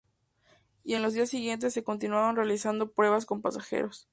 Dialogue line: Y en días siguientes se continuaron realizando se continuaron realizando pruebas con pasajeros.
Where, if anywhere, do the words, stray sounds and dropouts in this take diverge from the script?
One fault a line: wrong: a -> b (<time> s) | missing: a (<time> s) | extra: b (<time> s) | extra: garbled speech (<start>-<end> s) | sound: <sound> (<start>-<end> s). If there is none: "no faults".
extra: los (1.0 s)
missing: se continuaron realizando (2.9 s)